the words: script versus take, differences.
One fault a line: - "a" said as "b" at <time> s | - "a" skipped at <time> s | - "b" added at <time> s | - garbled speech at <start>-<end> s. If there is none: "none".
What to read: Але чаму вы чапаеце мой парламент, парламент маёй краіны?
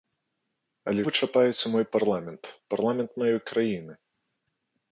- "чаму" skipped at 1.0 s